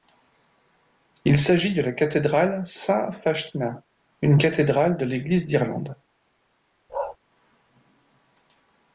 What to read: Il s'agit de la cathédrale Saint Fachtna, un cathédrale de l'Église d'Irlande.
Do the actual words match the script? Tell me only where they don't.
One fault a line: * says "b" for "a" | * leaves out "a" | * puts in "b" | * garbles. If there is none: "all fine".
* says "une" for "un"